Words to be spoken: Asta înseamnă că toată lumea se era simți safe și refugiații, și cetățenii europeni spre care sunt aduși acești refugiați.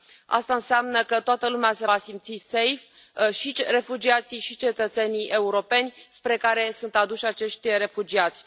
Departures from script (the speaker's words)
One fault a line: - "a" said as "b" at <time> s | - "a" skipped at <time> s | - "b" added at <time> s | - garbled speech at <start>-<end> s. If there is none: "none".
- "era" said as "va" at 1.8 s